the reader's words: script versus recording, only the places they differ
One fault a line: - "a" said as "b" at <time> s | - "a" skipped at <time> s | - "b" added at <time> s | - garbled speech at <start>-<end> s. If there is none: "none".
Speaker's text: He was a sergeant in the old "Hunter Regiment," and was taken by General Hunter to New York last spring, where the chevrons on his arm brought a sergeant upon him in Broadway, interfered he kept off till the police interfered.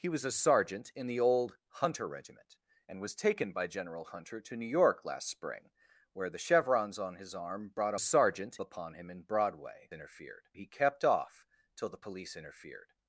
none